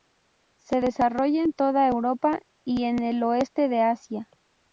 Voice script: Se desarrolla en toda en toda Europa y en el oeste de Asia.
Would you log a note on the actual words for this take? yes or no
yes